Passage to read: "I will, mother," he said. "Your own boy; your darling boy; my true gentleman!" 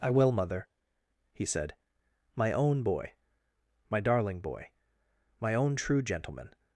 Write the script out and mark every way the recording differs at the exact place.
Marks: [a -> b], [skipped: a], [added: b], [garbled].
"I will, mother," he said. ["Your -> My] own boy; [your -> my] darling boy; my [added: own] true gentleman!"